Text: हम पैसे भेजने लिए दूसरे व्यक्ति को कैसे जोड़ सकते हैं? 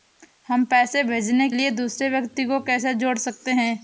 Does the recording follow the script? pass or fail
pass